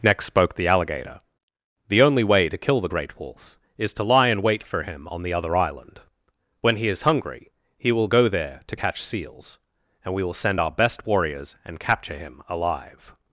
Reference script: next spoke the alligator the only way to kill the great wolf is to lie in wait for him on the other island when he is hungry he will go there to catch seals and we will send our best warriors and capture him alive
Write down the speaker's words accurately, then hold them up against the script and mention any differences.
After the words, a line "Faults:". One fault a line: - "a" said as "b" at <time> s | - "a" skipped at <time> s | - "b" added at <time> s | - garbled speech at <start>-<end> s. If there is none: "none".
next spoke the alligator the only way to kill the great wolf is to lie in wait for him on the other island when he is hungry he will go there to catch seals and we will send our best warriors and capture him alive
Faults:
none